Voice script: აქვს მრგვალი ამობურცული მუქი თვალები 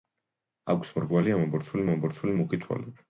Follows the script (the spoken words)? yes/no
no